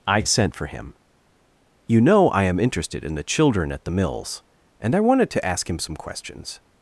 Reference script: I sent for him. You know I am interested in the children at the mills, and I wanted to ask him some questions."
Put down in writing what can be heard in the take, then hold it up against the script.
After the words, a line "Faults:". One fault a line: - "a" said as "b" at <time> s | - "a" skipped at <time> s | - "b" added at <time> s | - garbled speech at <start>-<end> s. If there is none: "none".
I sent for him. You know I am interested in the children at the mills, and I wanted to ask him some questions."
Faults:
none